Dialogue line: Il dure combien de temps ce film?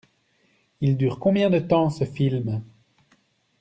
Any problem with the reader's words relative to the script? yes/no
no